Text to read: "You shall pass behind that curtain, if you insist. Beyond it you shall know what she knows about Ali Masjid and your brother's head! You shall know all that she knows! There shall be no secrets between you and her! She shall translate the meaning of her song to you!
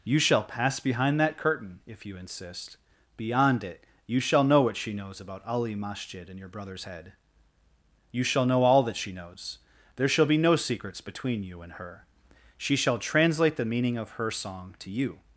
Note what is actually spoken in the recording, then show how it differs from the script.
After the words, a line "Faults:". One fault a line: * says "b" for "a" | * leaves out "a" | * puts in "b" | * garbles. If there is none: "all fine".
"You shall pass behind that curtain, if you insist. Beyond it you shall know what she knows about Ali Masjid and your brother's head! You shall know all that she knows! There shall be no secrets between you and her! She shall translate the meaning of her song to you!
Faults:
all fine